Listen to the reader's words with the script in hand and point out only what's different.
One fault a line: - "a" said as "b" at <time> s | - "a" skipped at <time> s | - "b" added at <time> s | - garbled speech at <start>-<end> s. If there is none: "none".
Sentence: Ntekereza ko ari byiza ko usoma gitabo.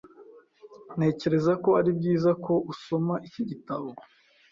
- "iki" added at 3.3 s